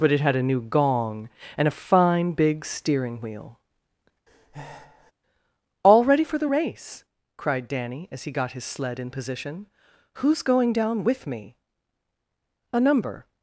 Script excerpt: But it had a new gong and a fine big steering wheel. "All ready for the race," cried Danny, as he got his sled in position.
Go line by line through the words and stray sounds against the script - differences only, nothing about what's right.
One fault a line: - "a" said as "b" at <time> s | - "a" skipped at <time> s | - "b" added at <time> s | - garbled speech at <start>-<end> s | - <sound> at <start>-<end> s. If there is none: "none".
- breath at 4.3-5.1 s
- "Who's going down with me A number" added at 10.2 s